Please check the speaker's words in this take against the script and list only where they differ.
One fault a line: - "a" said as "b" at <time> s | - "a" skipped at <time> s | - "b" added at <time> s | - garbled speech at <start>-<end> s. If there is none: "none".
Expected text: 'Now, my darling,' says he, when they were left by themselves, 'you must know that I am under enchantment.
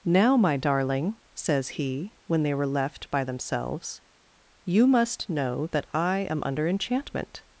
none